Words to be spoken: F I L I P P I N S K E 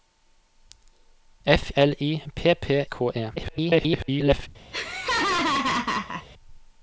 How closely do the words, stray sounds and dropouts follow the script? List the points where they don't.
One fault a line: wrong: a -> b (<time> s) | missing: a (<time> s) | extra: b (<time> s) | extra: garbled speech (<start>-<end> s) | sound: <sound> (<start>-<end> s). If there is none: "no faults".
missing: I (1.7 s)
missing: I N S (2.8 s)
extra: garbled speech (3.4-4.5 s)
sound: laugh (4.7-6.3 s)